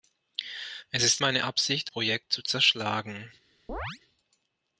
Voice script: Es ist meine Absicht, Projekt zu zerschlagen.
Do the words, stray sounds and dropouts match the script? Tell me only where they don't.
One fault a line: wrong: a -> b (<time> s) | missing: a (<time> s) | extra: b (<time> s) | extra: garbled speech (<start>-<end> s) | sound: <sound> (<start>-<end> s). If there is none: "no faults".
sound: chirp (3.7-4.0 s)